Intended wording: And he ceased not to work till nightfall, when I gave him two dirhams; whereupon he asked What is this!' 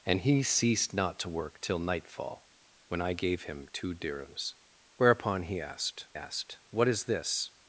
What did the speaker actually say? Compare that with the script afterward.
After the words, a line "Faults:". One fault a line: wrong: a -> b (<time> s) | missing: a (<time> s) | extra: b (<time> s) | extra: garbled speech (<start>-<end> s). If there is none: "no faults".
And he ceased not to work till nightfall, when I gave him two dirhams; whereupon he asked asked What is this!'
Faults:
extra: asked (6.1 s)